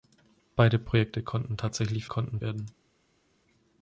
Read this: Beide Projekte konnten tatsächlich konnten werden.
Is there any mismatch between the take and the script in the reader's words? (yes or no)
no